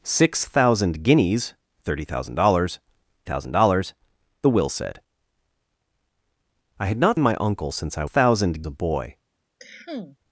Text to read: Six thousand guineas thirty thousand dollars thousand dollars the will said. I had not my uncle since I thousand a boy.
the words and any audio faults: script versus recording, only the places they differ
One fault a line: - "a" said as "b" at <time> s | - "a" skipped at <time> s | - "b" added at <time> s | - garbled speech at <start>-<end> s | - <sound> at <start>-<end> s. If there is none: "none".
- cough at 9.6-10.2 s